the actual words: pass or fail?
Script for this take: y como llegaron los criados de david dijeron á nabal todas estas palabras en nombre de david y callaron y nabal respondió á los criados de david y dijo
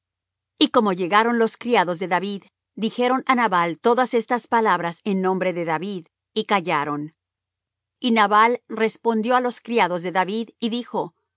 pass